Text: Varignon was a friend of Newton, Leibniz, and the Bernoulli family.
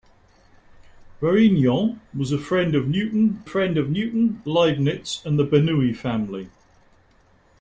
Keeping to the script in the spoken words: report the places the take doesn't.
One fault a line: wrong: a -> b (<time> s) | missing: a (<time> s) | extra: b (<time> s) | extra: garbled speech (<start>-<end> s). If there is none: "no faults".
extra: friend of Newton (3.4 s)